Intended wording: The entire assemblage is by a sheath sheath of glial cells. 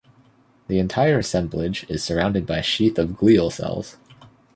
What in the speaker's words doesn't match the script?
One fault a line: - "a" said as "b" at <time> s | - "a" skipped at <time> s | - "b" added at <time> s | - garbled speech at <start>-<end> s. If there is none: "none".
- "surrounded" added at 2.0 s
- "sheath" skipped at 3.0 s